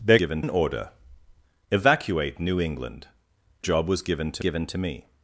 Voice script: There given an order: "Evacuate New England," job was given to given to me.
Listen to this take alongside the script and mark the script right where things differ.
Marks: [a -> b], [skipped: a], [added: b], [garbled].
There given an order: "Evacuate New England," job was given to given to me.